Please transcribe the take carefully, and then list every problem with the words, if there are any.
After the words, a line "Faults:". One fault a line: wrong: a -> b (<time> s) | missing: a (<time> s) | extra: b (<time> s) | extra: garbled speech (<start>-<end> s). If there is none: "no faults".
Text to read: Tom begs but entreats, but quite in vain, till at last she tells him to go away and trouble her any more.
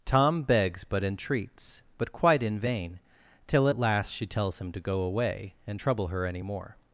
Tom begs but entreats, but quite in vain, till at last she tells him to go away and trouble her any more.
Faults:
no faults